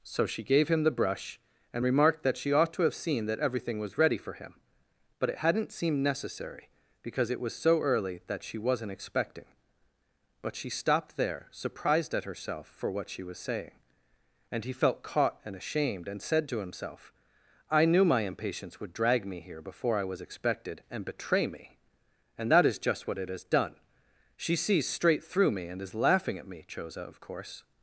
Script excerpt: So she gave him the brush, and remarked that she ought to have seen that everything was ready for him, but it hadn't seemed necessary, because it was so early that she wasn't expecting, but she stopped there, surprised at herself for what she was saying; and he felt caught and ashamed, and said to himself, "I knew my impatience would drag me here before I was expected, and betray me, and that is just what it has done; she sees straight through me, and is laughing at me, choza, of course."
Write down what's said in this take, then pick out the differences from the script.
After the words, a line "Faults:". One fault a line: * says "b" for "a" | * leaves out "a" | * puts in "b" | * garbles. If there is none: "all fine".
So she gave him the brush, and remarked that she ought to have seen that everything was ready for him, but it hadn't seemed necessary, because it was so early that she wasn't expecting, but she stopped there, surprised at herself for what she was saying; and he felt caught and ashamed, and said to himself, "I knew my impatience would drag me here before I was expected, and betray me, and that is just what it has done; she sees straight through me, and is laughing at me, choza, of course."
Faults:
all fine